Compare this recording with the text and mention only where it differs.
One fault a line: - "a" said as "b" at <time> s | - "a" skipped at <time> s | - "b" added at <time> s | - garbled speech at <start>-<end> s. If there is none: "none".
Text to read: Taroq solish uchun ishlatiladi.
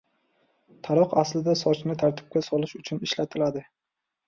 - "aslida sochni tartibga" added at 1.2 s